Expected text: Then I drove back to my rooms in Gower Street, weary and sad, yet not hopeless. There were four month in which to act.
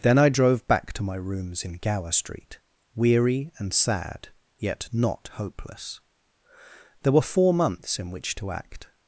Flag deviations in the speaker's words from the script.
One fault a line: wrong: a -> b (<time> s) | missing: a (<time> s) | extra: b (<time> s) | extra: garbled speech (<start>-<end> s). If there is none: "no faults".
wrong: month -> months (7.5 s)